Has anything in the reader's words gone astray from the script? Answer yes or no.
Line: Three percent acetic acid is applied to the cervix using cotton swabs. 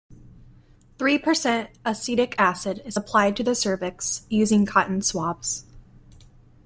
no